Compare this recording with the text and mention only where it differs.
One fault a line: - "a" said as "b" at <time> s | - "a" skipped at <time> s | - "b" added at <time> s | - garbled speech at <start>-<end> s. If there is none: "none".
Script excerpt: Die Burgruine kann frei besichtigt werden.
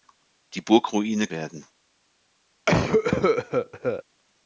- "kann frei besichtigt" skipped at 1.3 s